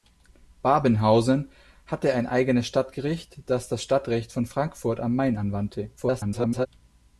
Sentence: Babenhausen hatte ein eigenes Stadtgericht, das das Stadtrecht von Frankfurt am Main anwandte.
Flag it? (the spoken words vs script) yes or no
yes